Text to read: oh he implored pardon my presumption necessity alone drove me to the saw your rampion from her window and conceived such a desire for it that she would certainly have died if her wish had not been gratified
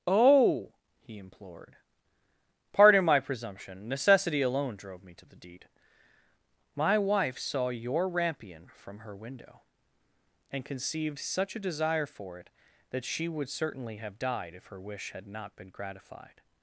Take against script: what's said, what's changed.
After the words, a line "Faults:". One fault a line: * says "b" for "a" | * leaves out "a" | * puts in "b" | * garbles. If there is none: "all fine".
oh he implored pardon my presumption necessity alone drove me to the deed my wife saw your rampion from her window and conceived such a desire for it that she would certainly have died if her wish had not been gratified
Faults:
* puts in "deed my wife"